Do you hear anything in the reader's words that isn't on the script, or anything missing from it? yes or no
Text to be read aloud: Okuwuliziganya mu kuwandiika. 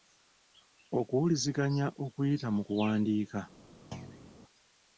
yes